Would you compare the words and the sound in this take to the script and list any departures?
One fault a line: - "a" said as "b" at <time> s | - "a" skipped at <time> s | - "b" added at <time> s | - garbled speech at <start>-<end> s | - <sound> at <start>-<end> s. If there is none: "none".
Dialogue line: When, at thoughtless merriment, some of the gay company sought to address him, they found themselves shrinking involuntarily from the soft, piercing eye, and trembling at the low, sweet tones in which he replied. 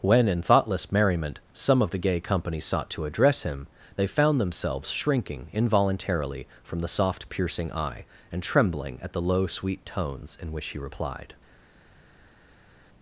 - "at" said as "in" at 0.3 s